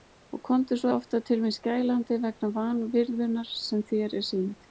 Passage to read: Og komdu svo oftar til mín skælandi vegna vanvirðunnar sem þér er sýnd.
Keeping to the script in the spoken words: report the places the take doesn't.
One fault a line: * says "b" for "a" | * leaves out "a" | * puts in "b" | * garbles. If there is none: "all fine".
all fine